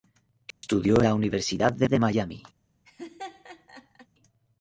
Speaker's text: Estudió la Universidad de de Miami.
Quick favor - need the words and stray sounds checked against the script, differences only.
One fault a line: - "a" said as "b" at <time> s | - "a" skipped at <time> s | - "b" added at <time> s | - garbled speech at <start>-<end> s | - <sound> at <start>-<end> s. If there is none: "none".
- dropout at 0.5-0.6 s
- laugh at 2.9-4.1 s